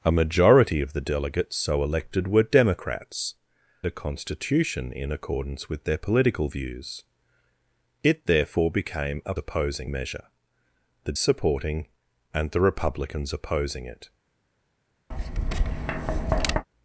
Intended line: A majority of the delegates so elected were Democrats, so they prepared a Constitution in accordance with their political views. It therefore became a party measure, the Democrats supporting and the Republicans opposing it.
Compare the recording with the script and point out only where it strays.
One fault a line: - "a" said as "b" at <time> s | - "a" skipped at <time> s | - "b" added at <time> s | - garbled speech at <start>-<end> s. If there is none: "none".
- "so they prepared" skipped at 3.4 s
- "party" said as "opposing" at 9.4 s
- "Democrats" skipped at 11.1 s